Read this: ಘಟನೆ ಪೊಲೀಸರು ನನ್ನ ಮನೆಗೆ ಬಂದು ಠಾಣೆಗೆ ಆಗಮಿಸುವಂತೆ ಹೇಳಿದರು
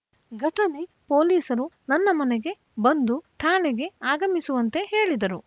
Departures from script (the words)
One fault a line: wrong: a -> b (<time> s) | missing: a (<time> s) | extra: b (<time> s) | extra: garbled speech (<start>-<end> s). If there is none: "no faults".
no faults